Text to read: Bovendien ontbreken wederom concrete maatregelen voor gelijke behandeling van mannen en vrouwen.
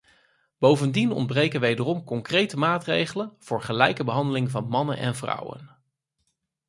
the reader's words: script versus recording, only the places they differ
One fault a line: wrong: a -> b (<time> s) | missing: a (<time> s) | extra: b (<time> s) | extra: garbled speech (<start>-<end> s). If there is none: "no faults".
no faults